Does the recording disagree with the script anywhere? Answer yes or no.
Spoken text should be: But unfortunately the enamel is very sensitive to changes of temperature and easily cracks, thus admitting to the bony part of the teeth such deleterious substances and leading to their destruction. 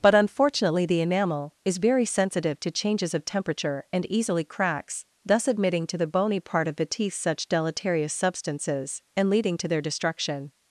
no